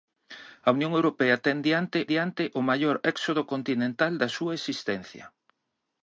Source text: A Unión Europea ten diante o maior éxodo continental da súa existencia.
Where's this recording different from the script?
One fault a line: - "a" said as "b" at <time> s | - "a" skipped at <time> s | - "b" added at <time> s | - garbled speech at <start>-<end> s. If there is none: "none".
- "diante" added at 2.1 s